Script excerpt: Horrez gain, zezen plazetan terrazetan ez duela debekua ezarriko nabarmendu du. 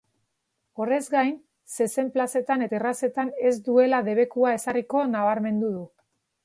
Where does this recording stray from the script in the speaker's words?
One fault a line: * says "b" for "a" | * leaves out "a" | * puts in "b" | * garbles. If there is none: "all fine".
all fine